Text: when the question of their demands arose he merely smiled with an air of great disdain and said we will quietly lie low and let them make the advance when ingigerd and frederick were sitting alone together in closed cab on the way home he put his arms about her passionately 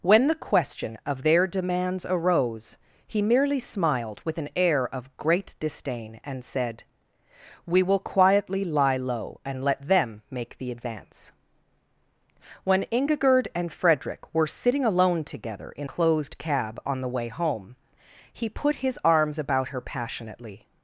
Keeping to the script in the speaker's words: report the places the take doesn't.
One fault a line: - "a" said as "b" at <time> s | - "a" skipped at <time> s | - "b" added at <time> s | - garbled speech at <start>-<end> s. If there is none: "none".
none